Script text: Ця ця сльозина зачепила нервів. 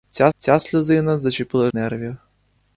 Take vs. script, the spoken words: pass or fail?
pass